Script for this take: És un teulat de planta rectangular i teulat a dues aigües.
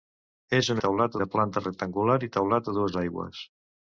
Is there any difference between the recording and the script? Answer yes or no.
no